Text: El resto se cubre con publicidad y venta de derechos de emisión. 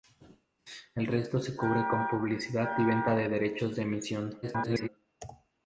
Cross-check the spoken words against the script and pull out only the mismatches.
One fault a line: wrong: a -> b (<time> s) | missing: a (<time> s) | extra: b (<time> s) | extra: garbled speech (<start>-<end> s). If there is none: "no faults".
extra: garbled speech (4.4-4.9 s)